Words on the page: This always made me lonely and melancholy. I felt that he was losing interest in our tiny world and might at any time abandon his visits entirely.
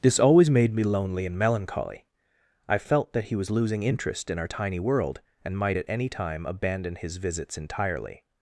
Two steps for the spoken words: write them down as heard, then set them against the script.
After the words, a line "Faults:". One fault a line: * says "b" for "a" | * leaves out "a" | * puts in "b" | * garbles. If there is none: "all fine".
This always made me lonely and melancholy. I felt that he was losing interest in our tiny world and might at any time abandon his visits entirely.
Faults:
all fine